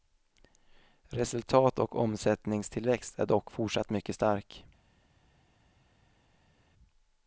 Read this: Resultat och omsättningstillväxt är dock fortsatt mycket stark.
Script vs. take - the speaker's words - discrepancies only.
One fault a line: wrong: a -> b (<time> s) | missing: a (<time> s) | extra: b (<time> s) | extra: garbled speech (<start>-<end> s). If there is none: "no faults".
no faults